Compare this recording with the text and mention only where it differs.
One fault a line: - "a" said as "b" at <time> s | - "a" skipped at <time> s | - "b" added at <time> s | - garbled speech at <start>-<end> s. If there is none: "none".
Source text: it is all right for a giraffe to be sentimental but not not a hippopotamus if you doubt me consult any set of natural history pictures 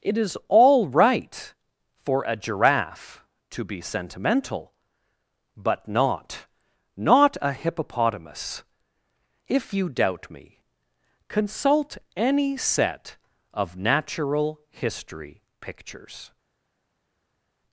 none